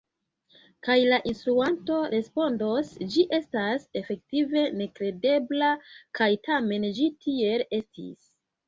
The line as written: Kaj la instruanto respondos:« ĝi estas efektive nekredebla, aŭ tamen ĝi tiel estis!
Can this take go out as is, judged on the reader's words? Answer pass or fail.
fail